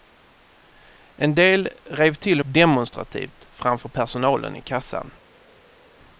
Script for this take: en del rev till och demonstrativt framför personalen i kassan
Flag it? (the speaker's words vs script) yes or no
no